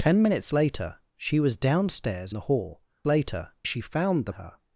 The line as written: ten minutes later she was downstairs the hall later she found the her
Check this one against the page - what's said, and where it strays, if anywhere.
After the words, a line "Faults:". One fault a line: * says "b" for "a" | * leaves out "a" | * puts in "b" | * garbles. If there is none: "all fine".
ten minutes later she was downstairs the hall later she found the her
Faults:
all fine